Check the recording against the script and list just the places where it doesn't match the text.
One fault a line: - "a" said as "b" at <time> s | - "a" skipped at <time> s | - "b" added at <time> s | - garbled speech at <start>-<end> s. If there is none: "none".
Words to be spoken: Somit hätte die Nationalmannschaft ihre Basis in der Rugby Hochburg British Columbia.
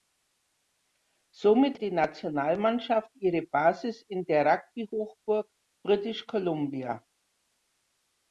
- "hätte" skipped at 1.8 s